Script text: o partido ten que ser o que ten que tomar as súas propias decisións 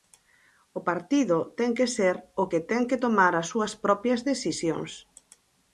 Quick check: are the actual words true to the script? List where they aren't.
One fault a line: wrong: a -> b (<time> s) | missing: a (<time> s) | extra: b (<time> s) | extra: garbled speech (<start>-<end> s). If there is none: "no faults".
no faults